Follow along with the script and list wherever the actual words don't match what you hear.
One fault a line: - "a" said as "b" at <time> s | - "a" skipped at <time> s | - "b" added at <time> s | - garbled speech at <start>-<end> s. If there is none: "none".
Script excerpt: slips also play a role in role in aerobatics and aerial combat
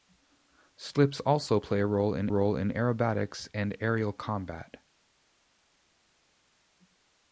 none